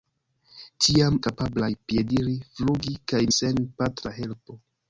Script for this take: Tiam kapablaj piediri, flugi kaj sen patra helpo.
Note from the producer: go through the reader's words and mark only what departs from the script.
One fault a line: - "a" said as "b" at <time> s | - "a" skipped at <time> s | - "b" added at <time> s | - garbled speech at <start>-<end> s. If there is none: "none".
none